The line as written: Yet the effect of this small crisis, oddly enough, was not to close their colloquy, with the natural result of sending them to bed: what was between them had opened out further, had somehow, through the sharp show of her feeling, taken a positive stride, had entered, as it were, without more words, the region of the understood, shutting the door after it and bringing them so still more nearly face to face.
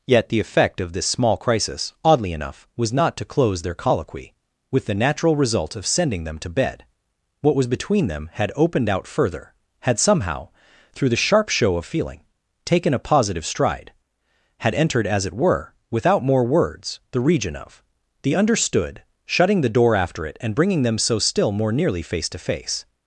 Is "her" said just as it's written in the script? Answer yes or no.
no